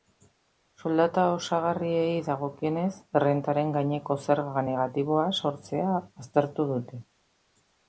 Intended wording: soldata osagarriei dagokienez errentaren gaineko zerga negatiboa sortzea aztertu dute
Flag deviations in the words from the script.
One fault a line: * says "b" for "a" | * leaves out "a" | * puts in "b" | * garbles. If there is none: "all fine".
all fine